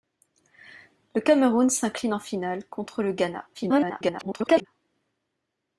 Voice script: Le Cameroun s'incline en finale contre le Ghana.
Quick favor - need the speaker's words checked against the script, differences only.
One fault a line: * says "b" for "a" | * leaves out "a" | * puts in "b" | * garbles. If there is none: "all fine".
* garbles